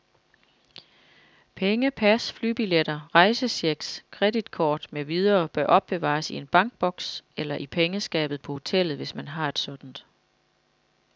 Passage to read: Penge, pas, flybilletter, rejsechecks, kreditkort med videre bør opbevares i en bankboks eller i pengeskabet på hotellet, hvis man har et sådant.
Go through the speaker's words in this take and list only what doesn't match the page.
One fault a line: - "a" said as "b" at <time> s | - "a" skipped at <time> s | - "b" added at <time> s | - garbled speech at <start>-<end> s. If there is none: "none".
none